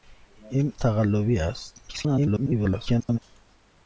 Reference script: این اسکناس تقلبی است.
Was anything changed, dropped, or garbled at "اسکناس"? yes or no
yes